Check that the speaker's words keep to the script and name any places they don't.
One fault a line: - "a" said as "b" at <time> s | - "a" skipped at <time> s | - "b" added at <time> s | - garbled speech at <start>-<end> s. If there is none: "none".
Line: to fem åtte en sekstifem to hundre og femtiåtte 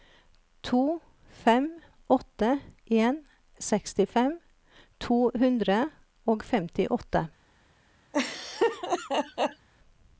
none